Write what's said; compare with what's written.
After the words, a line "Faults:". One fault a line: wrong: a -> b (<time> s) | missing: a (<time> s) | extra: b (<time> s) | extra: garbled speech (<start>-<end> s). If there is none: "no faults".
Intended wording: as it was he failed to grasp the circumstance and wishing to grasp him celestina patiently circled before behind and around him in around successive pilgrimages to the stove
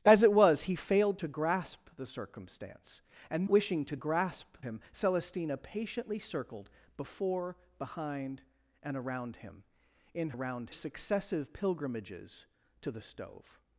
as it was he failed to grasp the circumstance and wishing to grasp him celestina patiently circled before behind and around him in around successive pilgrimages to the stove
Faults:
no faults